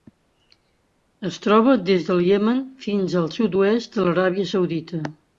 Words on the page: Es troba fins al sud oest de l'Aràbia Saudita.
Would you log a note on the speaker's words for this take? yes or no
yes